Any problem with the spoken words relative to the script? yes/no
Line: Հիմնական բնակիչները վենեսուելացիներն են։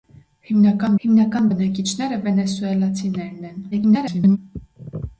yes